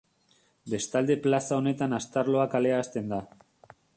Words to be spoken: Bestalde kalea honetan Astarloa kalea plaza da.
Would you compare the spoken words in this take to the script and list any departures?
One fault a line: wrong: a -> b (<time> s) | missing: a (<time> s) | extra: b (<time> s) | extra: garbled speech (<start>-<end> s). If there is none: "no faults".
wrong: kalea -> plaza (1.3 s)
wrong: plaza -> hasten (2.8 s)